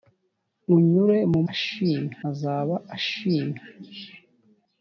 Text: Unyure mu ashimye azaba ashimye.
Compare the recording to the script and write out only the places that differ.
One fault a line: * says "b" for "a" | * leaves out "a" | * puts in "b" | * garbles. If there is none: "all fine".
all fine